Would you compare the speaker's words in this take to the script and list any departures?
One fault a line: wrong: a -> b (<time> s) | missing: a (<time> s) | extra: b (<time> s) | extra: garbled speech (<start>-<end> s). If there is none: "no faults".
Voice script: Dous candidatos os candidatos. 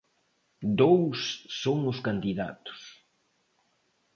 wrong: candidatos -> son (1.6 s)